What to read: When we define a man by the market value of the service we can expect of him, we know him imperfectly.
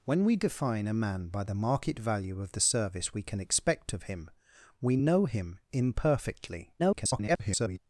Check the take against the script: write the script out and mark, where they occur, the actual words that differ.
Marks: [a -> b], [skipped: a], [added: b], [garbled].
When we define a man by the market value of the service we can expect of him, we know him imperfectly. [garbled]